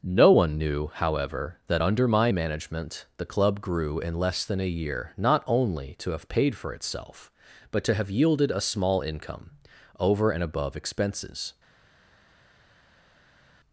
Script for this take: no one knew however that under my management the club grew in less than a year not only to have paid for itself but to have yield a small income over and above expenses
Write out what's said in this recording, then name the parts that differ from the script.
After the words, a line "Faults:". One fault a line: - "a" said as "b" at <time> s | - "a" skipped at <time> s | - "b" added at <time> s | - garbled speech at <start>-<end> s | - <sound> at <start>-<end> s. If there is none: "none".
no one knew however that under my management the club grew in less than a year not only to have paid for itself but to have yielded a small income over and above expenses
Faults:
- "yield" said as "yielded" at 8.1 s